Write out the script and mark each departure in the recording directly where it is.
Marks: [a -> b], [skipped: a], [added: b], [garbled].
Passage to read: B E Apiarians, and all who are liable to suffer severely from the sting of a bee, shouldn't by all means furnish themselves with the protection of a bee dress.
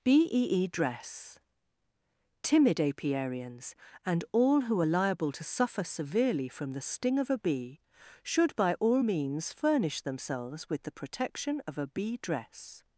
B E [added: E DRESS Timid] Apiarians, and all who are liable to suffer severely from the sting of a bee, [shouldn't -> should] by all means furnish themselves with the protection of a bee dress.